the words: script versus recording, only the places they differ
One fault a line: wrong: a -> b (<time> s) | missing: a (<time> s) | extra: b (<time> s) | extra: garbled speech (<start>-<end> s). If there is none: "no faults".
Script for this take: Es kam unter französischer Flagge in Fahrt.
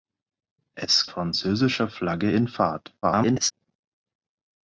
missing: kam unter (1.1 s)
extra: garbled speech (3.0-3.5 s)